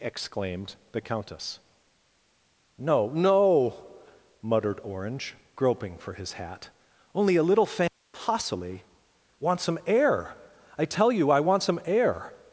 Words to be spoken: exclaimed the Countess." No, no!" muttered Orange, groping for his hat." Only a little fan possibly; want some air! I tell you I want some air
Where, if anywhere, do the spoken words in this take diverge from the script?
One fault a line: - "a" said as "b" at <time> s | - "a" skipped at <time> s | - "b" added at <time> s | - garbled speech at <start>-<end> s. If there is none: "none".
none